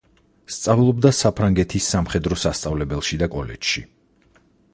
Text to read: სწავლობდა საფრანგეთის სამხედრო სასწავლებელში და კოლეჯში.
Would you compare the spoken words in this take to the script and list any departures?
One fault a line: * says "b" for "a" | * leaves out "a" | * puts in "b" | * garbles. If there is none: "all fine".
all fine